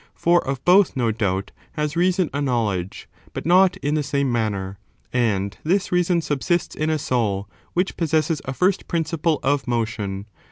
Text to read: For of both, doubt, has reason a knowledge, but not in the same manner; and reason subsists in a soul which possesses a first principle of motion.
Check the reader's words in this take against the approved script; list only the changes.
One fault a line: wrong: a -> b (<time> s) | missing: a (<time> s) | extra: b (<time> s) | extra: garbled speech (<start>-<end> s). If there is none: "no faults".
extra: no (0.9 s)
extra: this (5.6 s)